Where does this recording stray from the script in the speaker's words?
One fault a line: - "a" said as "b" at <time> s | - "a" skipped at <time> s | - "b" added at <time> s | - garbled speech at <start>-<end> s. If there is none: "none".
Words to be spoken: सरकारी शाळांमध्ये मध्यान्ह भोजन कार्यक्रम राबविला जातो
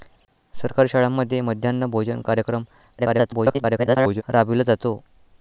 - garbled speech at 3.0-4.2 s